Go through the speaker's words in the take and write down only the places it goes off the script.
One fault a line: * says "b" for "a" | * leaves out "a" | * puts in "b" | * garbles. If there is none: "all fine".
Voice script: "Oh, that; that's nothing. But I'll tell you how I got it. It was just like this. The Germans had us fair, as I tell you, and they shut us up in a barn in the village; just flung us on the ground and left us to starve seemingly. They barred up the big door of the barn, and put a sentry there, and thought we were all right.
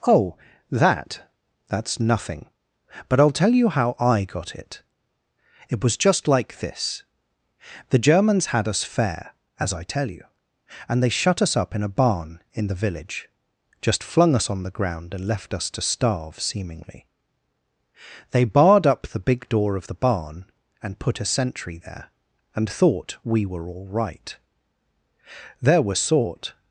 * puts in "There were sort"